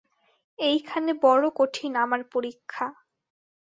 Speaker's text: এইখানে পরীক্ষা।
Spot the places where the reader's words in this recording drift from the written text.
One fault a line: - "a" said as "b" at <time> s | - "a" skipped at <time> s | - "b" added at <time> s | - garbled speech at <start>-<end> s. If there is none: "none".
- "বড়ো কঠিন আমার" added at 1.2 s